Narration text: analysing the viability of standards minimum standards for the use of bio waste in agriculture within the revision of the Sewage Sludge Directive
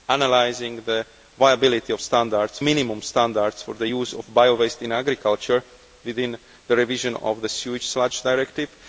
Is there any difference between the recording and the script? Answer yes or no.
no